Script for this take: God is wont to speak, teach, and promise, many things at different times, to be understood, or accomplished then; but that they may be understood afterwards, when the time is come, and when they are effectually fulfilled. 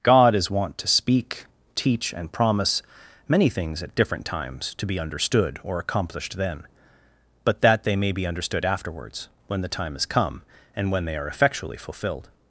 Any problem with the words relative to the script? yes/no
no